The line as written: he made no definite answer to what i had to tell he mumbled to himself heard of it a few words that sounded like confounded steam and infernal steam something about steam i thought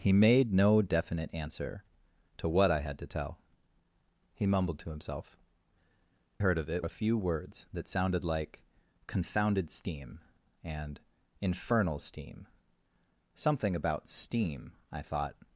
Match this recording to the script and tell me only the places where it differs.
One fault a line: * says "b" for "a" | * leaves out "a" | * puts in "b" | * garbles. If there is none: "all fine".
all fine